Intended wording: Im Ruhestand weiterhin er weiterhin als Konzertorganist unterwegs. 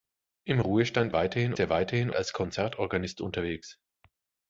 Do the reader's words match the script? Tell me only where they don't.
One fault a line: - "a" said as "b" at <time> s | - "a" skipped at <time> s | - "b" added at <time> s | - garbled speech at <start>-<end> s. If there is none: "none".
none